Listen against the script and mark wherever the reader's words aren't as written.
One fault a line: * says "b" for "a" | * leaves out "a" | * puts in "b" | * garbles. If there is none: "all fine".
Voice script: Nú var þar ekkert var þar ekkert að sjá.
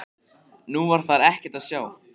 * leaves out "var þar ekkert"